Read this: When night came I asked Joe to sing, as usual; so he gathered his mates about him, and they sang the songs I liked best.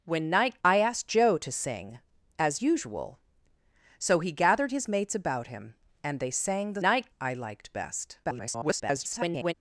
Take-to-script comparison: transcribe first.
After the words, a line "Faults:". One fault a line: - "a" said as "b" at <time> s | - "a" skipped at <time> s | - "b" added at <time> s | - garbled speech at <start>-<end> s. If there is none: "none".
When night I asked Joe to sing, as usual; so he gathered his mates about him, and they sang the night I liked best. [garbled]
Faults:
- "came" skipped at 0.6 s
- "songs" said as "night" at 6.8 s
- garbled speech at 8.2-9.5 s